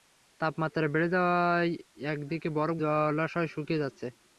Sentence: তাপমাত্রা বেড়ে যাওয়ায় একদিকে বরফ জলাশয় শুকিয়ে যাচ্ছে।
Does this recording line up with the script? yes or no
yes